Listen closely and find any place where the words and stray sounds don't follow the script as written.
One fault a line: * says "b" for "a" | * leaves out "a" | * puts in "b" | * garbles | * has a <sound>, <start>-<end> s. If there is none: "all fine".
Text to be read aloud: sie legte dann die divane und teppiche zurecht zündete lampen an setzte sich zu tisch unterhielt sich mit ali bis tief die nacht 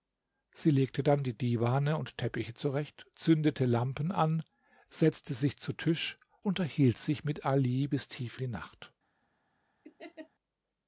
* has a laugh, 9.8-10.3 s